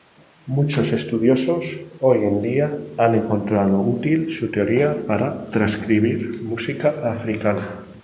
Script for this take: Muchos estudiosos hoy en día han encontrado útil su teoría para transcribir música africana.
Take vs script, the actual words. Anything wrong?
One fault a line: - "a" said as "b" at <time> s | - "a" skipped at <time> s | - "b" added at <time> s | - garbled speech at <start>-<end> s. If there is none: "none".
none